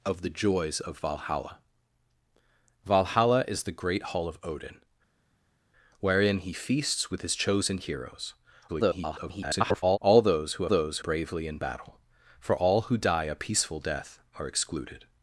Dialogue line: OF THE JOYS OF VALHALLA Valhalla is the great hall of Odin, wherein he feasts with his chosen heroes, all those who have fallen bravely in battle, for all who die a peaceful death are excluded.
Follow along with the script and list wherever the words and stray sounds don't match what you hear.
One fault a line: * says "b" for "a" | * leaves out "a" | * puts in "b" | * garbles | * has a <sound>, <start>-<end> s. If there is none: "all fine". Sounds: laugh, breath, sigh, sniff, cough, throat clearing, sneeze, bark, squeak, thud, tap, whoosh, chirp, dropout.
* garbles
* says "those" for "fallen"